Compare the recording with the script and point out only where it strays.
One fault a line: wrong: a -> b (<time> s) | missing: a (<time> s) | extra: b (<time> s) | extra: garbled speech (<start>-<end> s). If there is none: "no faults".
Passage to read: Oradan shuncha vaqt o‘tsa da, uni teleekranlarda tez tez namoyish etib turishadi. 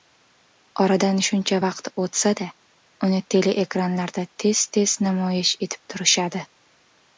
no faults